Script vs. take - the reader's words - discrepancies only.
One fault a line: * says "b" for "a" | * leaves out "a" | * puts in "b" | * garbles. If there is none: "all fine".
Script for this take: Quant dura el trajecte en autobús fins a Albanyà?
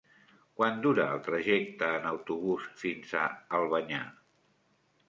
all fine